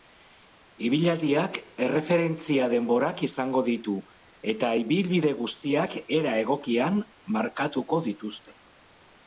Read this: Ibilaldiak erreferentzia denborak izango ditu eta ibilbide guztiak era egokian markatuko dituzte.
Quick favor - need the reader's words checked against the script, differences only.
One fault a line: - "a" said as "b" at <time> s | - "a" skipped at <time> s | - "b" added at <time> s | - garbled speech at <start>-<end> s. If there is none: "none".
none